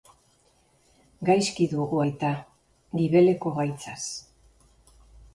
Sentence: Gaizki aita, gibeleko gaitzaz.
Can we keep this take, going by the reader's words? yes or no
no